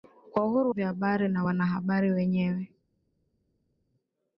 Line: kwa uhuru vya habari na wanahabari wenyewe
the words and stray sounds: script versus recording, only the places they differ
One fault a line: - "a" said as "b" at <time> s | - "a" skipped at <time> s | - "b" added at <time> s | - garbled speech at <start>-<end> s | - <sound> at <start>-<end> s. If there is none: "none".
none